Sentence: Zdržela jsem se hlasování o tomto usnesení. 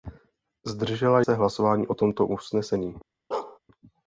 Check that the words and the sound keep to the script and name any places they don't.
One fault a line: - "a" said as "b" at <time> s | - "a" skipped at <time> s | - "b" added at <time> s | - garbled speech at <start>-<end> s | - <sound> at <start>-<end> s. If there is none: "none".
- "jsem" skipped at 1.2 s
- bark at 3.3-3.6 s